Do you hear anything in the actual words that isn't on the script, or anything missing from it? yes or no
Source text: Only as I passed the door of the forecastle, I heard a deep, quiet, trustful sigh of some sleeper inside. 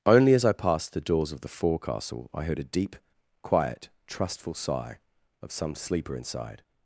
yes